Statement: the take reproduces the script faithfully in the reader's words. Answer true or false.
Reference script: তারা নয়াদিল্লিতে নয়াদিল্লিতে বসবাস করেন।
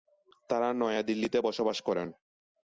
false